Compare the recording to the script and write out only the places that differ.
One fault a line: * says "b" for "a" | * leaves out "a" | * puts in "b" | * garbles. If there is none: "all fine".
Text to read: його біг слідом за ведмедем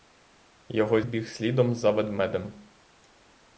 all fine